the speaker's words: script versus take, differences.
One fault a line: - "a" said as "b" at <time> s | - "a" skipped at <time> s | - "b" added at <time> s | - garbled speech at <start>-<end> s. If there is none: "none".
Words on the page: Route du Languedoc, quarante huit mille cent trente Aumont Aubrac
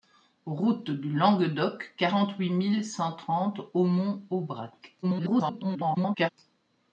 - garbled speech at 5.0-6.3 s